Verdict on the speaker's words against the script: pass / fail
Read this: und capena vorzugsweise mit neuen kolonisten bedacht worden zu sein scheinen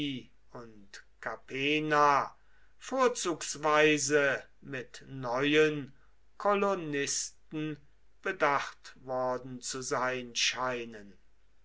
pass